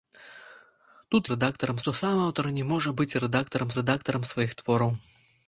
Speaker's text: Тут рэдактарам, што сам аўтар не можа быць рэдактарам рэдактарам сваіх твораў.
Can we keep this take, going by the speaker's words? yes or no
yes